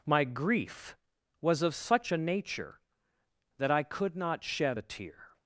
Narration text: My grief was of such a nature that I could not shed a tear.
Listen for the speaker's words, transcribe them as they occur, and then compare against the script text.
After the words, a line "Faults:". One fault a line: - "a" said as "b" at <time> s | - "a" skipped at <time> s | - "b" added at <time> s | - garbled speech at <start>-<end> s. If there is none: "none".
My grief was of such a nature that I could not shed a tear.
Faults:
none